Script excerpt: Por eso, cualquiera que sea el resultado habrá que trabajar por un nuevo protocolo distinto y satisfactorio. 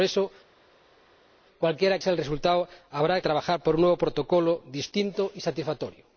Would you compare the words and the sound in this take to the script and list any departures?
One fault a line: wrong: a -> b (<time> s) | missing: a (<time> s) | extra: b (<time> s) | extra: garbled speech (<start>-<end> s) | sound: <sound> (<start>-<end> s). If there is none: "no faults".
missing: que (2.0 s)
missing: que (3.2 s)